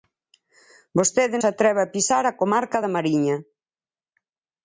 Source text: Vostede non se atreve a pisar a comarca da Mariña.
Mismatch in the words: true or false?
true